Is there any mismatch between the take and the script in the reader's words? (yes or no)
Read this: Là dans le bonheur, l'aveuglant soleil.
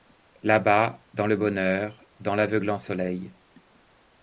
yes